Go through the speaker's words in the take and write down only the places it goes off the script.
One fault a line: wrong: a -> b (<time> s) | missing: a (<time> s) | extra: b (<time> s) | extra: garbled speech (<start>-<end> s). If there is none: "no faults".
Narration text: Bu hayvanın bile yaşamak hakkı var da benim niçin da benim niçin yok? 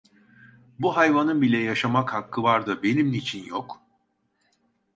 missing: da benim niçin (3.5 s)